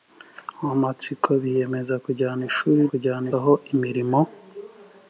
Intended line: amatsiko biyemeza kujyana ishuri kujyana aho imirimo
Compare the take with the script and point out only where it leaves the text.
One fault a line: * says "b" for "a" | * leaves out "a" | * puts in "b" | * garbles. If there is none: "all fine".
all fine